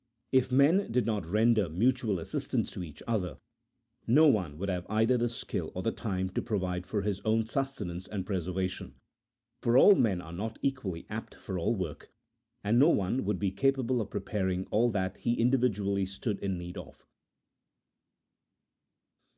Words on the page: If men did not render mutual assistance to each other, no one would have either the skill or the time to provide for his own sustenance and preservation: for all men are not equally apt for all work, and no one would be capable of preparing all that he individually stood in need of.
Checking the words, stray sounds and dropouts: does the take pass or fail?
pass